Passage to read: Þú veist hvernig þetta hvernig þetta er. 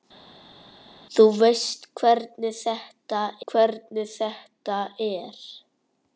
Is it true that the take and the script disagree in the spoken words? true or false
false